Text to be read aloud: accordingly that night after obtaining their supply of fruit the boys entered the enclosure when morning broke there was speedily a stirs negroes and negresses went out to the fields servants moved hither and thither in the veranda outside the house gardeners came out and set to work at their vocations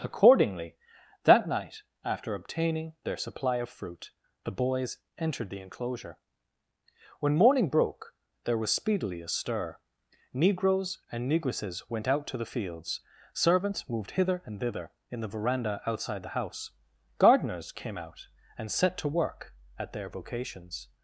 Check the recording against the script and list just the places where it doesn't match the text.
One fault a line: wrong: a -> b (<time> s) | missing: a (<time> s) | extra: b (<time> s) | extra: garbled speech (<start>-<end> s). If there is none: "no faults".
wrong: stirs -> stir (9.3 s)